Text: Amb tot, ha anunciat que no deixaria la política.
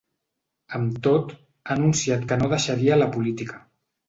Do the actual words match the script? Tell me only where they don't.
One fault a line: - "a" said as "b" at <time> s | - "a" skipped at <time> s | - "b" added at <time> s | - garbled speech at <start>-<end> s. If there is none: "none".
none